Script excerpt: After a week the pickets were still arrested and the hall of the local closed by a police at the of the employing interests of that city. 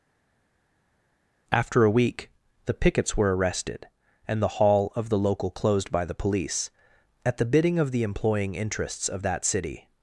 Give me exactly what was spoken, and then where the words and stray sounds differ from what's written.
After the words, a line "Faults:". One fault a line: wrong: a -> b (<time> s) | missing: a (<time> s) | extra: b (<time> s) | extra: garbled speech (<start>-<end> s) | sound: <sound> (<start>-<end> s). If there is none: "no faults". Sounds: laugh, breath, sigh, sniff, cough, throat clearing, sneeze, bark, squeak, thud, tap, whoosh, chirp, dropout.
After a week the pickets were arrested and the hall of the local closed by the police at the bidding of the employing interests of that city.
Faults:
missing: still (3.3 s)
wrong: a -> the (6.0 s)
extra: bidding (7.4 s)